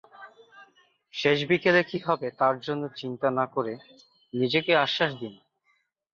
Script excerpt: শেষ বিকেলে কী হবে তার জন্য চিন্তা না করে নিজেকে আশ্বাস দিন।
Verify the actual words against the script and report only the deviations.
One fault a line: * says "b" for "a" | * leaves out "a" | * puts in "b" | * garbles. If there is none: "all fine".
all fine